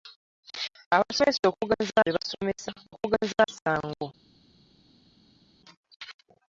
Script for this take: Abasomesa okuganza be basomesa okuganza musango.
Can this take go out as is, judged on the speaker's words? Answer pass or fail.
pass